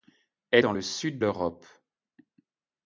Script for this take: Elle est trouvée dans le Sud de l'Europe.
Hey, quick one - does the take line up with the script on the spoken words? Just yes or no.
no